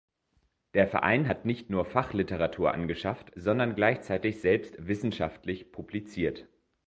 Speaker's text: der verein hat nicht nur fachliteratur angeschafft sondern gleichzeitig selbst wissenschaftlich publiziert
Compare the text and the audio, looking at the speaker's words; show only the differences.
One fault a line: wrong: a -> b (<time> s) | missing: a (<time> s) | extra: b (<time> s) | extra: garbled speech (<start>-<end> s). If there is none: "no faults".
no faults